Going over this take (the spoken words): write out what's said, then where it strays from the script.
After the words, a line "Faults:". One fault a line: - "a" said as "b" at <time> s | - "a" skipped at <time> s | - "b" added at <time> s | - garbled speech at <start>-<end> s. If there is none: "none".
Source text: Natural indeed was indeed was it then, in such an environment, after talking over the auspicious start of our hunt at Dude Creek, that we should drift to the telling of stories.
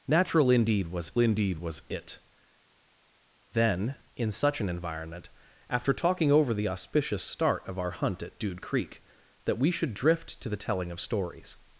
Natural indeed was indeed was it then, in such an environment, after talking over the auspicious start of our hunt at Dude Creek, that we should drift to the telling of stories.
Faults:
none